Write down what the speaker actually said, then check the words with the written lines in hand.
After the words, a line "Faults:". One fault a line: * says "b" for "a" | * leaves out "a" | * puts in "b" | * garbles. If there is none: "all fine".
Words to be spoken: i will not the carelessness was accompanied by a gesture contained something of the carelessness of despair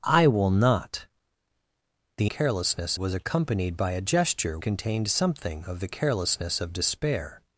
i will not the carelessness was accompanied by a gesture contained something of the carelessness of despair
Faults:
all fine